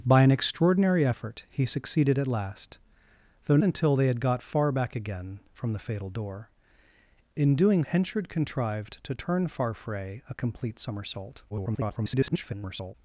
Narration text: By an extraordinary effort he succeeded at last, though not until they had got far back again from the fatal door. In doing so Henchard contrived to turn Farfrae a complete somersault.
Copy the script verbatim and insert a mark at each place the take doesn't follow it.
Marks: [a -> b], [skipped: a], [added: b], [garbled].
By an extraordinary effort he succeeded at last, though [skipped: not] until they had got far back again from the fatal door. In doing [skipped: so] Henchard contrived to turn Farfrae a complete somersault. [garbled]